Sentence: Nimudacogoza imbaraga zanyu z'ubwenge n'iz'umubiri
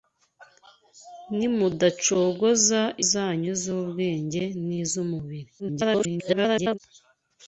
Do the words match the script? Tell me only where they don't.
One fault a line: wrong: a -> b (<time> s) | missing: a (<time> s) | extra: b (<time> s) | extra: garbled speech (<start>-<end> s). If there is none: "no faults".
missing: imbaraga (2.8 s)
extra: garbled speech (5.6-6.8 s)